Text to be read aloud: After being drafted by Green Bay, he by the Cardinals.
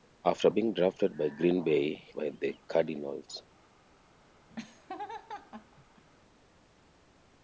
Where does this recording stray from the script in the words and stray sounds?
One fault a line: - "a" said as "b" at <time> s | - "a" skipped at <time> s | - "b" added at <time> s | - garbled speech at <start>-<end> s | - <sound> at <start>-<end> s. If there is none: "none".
- laugh at 4.5-6.0 s